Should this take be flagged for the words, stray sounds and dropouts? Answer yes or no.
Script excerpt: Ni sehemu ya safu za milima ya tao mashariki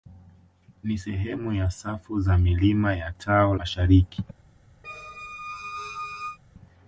yes